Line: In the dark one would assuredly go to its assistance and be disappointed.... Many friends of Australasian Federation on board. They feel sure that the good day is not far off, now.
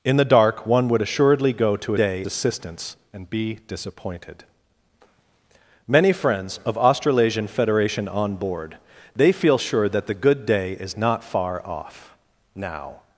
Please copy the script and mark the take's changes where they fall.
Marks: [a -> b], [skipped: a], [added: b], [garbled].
In the dark one would assuredly go to [its -> day] assistance and be disappointed.... Many friends of Australasian Federation on board. They feel sure that the good day is not far off, now.